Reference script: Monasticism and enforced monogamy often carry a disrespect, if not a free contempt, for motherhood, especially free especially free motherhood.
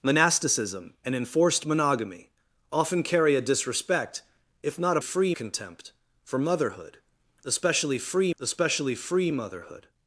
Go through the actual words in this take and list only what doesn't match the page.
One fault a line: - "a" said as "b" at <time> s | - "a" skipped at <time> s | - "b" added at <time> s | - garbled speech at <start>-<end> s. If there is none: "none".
none